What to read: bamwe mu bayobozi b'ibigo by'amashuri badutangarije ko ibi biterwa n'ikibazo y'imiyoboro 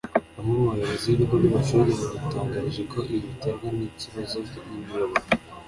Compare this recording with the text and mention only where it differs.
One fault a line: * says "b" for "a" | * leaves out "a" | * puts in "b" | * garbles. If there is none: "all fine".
all fine